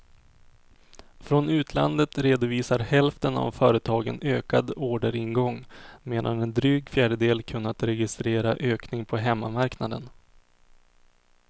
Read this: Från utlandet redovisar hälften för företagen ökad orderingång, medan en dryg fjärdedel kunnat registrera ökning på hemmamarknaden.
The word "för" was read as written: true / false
false